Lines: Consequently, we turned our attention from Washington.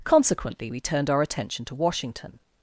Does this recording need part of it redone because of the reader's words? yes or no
yes